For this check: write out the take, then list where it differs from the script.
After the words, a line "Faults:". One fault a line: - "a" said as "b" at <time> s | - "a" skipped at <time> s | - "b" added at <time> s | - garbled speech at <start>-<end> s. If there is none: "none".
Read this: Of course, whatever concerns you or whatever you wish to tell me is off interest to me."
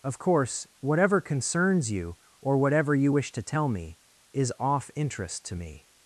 Of course, whatever concerns you or whatever you wish to tell me is off interest to me."
Faults:
none